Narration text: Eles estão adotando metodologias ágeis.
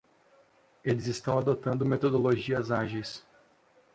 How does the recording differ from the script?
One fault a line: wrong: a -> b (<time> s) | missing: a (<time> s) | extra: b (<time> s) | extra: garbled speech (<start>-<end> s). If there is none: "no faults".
no faults